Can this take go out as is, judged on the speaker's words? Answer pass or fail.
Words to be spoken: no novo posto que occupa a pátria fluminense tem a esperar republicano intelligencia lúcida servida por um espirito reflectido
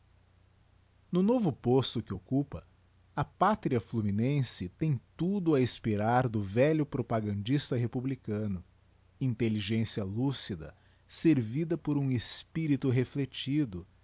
fail